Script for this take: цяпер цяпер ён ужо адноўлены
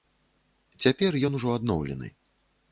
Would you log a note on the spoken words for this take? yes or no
yes